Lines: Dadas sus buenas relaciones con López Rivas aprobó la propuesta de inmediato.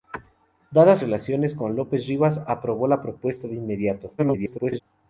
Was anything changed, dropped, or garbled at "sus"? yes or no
yes